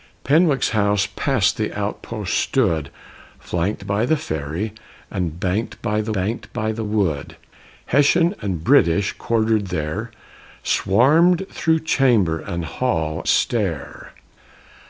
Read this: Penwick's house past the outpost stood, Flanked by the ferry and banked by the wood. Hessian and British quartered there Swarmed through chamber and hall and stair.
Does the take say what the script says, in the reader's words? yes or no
no